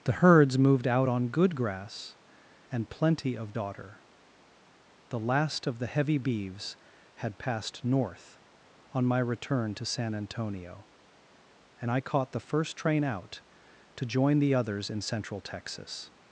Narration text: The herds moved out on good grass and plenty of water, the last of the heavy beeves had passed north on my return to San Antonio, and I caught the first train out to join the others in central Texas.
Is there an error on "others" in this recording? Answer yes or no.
no